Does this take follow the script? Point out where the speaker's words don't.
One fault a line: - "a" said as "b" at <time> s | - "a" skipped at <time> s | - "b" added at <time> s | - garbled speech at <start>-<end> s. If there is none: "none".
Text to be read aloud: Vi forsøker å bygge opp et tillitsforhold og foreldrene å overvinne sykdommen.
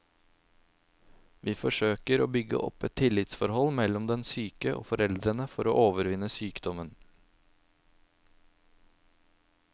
- "mellom den syke" added at 3.8 s
- "for" added at 5.5 s